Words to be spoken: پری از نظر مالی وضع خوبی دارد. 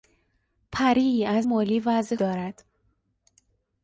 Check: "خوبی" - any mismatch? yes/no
yes